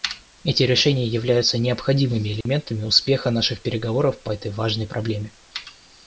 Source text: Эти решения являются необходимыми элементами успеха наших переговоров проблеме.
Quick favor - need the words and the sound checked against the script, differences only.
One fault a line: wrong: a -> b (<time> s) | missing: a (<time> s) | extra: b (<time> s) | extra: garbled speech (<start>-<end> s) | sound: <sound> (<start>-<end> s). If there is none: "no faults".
sound: dropout (2.4-2.5 s)
extra: по этой важной (4.2 s)